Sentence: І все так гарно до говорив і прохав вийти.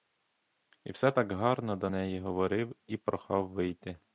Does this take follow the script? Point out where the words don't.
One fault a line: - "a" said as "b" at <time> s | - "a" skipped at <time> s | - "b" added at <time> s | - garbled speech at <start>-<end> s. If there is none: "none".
- "неї" added at 1.9 s